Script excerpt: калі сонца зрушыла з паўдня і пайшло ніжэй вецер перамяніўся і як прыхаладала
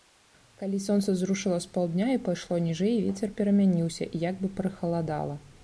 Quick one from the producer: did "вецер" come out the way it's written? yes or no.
yes